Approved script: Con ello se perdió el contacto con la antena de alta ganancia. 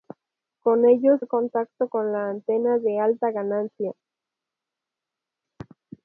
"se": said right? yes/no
no